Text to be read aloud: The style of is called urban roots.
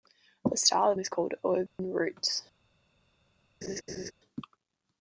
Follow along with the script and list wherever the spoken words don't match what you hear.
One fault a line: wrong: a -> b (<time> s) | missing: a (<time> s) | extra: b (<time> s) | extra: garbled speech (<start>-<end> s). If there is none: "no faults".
no faults